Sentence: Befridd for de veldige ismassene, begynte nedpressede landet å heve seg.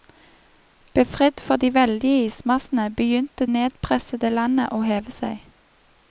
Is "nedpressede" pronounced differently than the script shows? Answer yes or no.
no